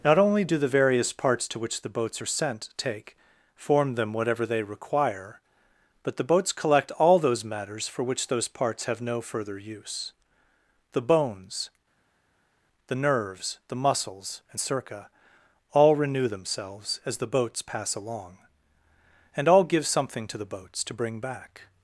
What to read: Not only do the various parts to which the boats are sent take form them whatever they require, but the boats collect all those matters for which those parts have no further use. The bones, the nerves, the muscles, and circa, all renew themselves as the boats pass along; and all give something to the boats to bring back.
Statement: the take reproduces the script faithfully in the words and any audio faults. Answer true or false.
true